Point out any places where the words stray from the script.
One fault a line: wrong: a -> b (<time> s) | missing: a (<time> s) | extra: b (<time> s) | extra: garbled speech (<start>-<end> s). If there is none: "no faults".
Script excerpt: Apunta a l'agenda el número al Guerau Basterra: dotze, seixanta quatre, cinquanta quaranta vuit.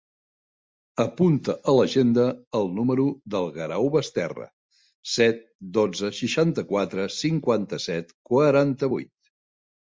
wrong: al -> del (3.3 s)
extra: set (5.2 s)
extra: set (7.8 s)